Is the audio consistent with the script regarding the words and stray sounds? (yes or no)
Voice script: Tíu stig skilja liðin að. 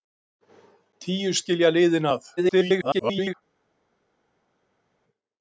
no